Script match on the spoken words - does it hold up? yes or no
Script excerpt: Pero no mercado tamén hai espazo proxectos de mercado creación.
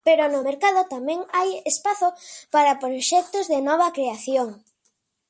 no